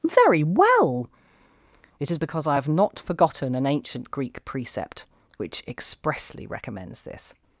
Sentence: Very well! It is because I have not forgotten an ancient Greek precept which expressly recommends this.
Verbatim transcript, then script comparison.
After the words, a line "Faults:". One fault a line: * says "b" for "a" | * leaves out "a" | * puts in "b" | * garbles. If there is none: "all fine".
Very well! It is because I have not forgotten an ancient Greek precept which expressly recommends this.
Faults:
all fine